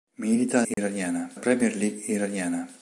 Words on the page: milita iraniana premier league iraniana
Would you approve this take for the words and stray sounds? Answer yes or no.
no